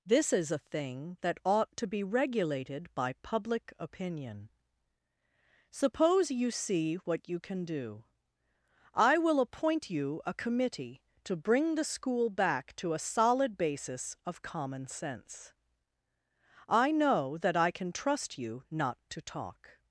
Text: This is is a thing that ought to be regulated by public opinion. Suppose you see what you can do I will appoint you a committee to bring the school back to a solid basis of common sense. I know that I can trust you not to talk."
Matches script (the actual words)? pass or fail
fail